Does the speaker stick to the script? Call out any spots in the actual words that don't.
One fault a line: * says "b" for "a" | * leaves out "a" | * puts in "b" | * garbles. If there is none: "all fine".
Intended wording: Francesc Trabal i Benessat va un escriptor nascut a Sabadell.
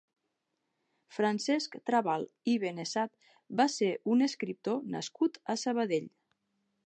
* puts in "ser"